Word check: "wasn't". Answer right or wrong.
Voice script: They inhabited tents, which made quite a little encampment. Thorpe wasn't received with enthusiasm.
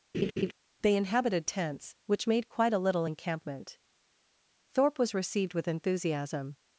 wrong